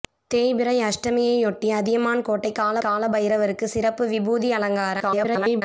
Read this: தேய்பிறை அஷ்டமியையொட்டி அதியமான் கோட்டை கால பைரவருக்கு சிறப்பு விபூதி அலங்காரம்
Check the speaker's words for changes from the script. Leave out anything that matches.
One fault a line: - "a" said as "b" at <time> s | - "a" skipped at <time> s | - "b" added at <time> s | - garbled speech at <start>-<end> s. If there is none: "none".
- "கால" added at 2.8 s
- garbled speech at 5.0-5.6 s